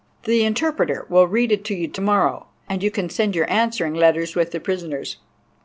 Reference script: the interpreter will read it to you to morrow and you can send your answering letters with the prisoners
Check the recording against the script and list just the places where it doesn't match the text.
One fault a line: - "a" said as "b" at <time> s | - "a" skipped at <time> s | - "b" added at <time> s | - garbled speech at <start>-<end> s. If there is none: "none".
none